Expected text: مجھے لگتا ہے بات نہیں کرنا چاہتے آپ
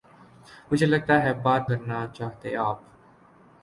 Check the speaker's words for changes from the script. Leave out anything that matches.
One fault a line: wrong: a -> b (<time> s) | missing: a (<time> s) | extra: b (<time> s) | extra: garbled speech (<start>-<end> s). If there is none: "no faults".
missing: نہیں (1.7 s)